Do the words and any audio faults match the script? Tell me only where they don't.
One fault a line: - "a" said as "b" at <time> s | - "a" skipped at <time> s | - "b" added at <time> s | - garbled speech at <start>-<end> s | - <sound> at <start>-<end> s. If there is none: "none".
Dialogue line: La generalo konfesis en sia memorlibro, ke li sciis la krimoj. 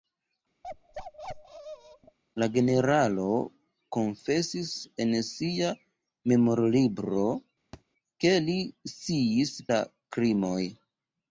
- bark at 0.6-2.2 s
- thud at 7.7-7.8 s